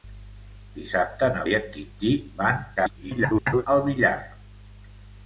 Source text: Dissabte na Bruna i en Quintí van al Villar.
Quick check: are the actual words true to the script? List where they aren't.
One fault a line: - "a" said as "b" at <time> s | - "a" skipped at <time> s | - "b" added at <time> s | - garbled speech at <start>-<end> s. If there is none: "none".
- "Bruna" skipped at 1.4 s
- garbled speech at 2.8-3.7 s